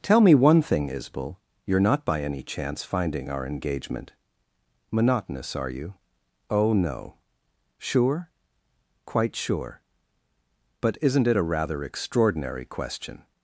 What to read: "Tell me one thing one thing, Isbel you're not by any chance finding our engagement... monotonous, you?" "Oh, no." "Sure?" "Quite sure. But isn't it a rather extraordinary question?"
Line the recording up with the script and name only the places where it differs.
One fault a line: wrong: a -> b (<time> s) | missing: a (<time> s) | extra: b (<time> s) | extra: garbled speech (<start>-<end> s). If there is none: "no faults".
missing: one thing (0.9 s)
extra: are (5.6 s)